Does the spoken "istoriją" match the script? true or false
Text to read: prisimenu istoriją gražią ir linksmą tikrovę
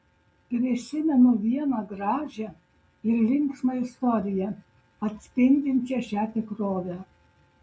false